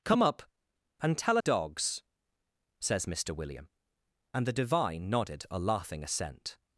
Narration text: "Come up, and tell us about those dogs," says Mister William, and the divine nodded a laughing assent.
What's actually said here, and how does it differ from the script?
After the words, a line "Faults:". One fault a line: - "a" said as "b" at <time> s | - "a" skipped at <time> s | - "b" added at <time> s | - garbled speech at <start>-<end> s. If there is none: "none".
"Come up, and tell dogs," says Mister William, and the divine nodded a laughing assent.
Faults:
- "us about those" skipped at 1.4 s